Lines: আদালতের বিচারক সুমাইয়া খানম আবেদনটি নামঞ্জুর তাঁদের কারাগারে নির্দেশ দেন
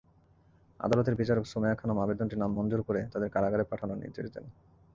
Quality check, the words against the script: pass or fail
fail